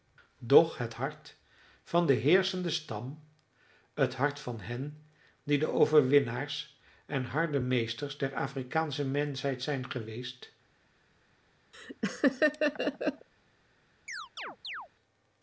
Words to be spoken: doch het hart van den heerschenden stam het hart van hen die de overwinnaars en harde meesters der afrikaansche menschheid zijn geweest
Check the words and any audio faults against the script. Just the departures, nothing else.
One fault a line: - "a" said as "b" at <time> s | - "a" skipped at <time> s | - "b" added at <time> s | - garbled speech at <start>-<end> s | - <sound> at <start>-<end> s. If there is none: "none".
- laugh at 11.7-13.3 s
- chirp at 14.1-14.9 s